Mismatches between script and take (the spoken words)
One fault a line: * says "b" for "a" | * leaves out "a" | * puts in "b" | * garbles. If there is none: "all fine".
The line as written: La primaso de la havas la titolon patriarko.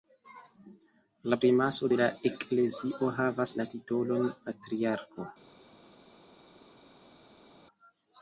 * puts in "eklezio"